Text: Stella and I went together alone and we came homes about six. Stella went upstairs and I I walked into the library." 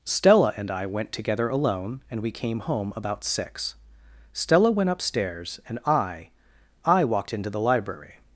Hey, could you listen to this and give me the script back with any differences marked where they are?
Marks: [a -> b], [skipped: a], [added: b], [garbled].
Stella and I went together alone and we came [homes -> home] about six. Stella went upstairs and I I walked into the library."